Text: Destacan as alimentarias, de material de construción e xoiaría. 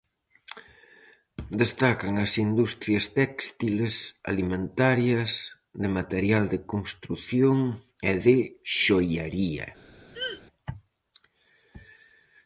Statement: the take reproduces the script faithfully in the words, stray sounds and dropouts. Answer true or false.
false